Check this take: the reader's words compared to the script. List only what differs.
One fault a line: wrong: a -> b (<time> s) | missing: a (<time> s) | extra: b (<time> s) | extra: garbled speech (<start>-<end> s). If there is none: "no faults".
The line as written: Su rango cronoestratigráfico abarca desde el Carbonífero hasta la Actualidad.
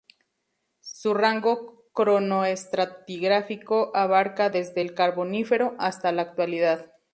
no faults